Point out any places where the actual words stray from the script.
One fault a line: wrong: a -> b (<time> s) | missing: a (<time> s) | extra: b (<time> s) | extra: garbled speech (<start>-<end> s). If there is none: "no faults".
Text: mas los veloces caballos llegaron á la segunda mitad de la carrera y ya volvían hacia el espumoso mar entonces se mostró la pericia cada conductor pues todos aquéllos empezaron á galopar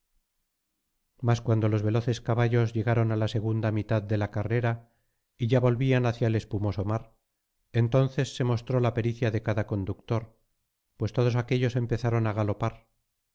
extra: cuando (1.4 s)
extra: de (9.3 s)